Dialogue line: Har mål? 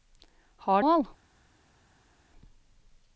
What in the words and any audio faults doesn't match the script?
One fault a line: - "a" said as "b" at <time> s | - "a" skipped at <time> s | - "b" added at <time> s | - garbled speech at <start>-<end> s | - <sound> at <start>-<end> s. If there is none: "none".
none